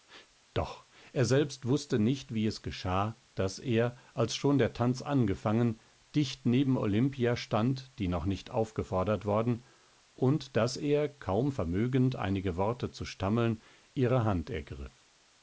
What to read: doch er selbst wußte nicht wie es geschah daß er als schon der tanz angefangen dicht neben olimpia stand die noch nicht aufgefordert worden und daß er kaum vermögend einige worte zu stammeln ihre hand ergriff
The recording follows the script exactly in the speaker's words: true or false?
true